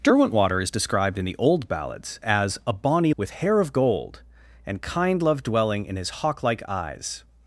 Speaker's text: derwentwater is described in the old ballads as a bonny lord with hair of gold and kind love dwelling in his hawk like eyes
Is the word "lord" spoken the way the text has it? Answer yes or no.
no